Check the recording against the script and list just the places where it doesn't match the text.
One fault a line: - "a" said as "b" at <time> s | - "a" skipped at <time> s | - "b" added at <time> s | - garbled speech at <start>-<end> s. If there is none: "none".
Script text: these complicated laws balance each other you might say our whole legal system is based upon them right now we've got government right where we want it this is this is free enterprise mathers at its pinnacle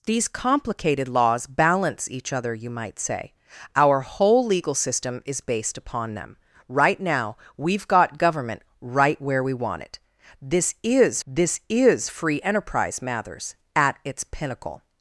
none